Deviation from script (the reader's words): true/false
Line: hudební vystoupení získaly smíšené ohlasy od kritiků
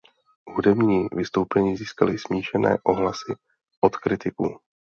false